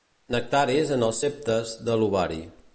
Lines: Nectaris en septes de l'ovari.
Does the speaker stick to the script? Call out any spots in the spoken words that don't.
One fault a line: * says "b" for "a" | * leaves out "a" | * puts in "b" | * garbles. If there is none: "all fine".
* puts in "els"